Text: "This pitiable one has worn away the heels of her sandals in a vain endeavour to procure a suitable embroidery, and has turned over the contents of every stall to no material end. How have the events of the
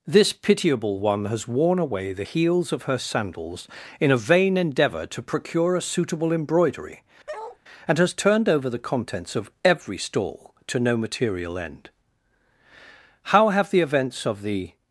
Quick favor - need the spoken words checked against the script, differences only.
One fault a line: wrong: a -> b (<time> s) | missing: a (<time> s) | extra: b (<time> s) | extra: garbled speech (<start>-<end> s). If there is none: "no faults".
no faults